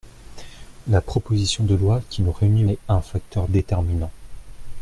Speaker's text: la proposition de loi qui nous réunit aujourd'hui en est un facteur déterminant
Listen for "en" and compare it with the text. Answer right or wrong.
wrong